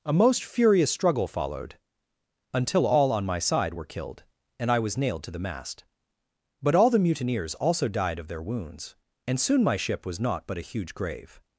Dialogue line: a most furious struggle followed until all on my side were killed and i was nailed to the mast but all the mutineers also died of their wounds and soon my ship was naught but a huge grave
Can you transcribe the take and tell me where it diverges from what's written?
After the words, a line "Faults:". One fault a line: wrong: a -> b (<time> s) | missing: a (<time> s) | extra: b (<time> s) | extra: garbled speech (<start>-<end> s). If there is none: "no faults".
a most furious struggle followed until all on my side were killed and i was nailed to the mast but all the mutineers also died of their wounds and soon my ship was naught but a huge grave
Faults:
no faults